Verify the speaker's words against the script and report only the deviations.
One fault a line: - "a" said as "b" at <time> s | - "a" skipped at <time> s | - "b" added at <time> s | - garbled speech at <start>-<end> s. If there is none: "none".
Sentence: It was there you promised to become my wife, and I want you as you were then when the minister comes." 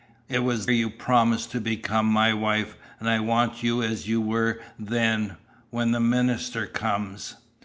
- "there" skipped at 0.7 s